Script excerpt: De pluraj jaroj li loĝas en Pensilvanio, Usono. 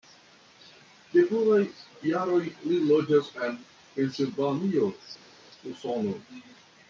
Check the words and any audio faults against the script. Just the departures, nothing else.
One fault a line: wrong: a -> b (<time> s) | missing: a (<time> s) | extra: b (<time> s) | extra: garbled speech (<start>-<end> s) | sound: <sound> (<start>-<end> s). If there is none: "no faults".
no faults